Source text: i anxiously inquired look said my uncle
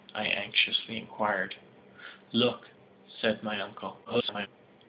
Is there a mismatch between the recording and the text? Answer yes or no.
yes